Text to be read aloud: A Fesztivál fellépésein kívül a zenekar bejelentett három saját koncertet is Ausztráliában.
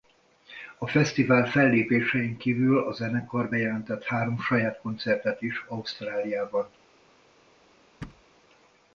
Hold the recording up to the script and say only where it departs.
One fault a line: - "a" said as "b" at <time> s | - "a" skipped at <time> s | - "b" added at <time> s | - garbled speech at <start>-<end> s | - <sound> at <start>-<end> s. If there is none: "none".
- thud at 8.0-8.2 s